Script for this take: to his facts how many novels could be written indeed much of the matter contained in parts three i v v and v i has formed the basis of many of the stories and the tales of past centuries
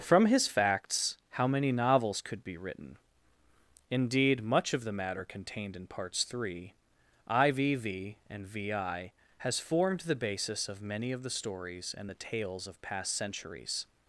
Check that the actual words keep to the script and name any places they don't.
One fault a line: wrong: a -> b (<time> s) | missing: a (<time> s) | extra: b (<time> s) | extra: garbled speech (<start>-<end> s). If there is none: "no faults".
wrong: to -> from (0.0 s)